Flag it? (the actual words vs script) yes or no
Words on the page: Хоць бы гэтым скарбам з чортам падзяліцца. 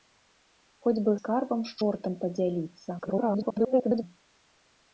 yes